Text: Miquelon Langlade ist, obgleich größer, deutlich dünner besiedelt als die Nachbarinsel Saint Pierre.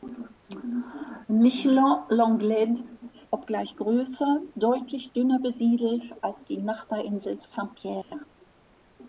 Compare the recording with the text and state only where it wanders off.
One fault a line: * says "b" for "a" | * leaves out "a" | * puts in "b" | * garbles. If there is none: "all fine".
* leaves out "ist"